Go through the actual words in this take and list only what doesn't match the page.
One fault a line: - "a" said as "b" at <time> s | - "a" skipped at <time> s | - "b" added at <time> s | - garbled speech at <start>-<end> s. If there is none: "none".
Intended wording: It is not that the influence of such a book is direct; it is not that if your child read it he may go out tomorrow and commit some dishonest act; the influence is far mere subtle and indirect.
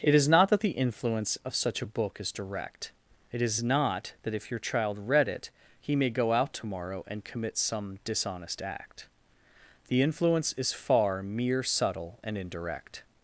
none